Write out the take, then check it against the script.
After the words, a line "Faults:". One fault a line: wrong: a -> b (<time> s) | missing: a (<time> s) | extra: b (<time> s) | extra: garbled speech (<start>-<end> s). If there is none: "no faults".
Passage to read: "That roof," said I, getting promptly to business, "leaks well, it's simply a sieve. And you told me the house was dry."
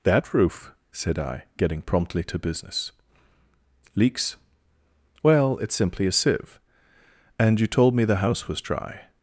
"That roof," said I, getting promptly to business, "leaks well, it's simply a sieve. And you told me the house was dry."
Faults:
no faults